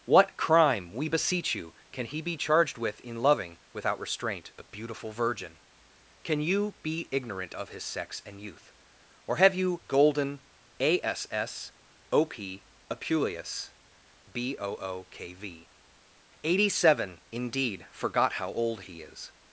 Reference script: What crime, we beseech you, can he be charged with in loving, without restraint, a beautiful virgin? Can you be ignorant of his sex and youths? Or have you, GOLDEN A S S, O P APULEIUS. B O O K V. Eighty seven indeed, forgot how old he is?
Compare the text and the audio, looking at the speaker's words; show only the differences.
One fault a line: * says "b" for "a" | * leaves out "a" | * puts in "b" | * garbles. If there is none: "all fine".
* says "youth" for "youths"